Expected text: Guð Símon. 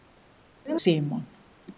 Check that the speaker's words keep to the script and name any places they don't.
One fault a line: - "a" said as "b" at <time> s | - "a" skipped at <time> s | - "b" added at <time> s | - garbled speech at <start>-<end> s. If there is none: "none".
none